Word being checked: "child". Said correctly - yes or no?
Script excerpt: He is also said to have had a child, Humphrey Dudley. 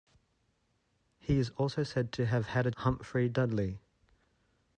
no